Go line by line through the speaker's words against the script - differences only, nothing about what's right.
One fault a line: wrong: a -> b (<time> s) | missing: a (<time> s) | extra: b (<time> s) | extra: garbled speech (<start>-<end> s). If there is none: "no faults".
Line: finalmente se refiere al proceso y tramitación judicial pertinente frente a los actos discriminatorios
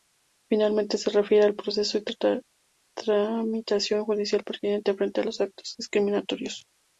no faults